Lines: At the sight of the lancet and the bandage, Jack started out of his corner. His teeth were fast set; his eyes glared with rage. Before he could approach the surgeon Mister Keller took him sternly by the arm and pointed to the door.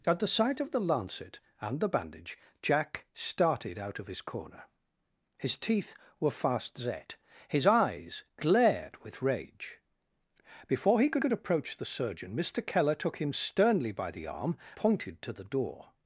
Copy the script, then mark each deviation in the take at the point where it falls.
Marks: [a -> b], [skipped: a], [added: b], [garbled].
At the sight of the lancet and the bandage, Jack started out of his corner. His teeth were fast set; his eyes glared with rage. Before he could [added: could] approach the surgeon Mister Keller took him sternly by the arm [skipped: and] pointed to the door.